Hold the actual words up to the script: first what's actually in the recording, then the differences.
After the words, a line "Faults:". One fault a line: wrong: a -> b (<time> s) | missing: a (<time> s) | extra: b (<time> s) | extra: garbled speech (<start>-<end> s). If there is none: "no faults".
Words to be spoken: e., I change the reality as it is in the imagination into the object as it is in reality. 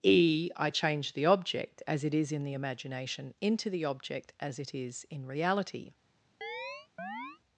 e., I change the object as it is in the imagination into the object as it is in reality.
Faults:
wrong: reality -> object (1.3 s)